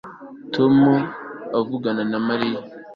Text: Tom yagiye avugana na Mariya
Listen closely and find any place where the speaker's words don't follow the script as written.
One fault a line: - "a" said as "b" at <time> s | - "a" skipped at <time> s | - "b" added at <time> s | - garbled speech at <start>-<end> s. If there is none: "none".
- "yagiye" skipped at 0.8 s